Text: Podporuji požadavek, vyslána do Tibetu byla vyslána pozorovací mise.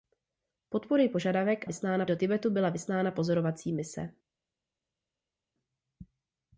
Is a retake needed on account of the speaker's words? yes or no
no